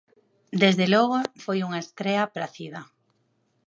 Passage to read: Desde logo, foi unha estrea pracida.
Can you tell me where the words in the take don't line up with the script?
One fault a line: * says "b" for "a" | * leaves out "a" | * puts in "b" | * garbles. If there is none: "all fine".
all fine